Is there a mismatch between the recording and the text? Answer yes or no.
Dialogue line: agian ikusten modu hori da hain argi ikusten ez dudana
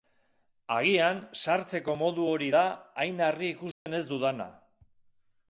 yes